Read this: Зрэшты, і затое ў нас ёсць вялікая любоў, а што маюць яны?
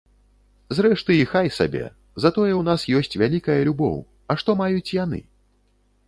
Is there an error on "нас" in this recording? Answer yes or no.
no